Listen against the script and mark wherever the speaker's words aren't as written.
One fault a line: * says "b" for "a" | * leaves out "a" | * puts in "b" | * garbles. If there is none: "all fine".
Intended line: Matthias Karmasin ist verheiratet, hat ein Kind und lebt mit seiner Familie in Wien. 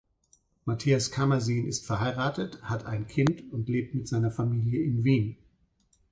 all fine